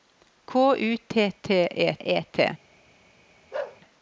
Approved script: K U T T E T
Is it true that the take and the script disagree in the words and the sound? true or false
true